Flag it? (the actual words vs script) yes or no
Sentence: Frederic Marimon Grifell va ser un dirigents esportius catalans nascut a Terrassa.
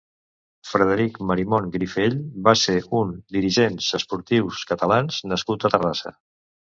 no